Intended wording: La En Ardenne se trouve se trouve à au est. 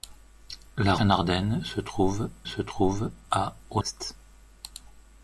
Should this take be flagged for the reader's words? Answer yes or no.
no